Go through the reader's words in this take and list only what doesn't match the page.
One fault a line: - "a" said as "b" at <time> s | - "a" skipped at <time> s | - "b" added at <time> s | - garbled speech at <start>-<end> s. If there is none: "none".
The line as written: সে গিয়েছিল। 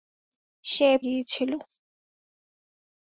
none